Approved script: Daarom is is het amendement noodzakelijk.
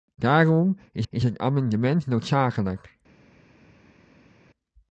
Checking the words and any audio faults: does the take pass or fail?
pass